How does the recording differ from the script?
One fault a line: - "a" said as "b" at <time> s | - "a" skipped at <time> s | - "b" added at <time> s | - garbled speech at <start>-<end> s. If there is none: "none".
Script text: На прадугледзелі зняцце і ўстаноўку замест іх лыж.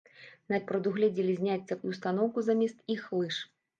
none